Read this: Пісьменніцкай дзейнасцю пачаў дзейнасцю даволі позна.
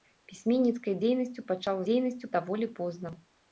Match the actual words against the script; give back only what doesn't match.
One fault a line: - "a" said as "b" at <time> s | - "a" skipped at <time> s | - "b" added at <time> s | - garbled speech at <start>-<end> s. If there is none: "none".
none